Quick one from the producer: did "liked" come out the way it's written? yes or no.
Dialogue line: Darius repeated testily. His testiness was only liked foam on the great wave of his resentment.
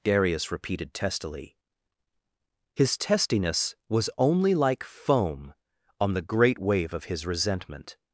no